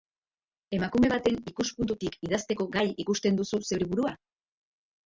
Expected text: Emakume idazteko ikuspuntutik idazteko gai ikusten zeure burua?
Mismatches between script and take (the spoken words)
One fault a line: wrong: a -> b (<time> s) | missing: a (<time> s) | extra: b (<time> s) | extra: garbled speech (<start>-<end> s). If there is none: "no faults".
wrong: idazteko -> baten (1.1 s)
extra: duzu (3.4 s)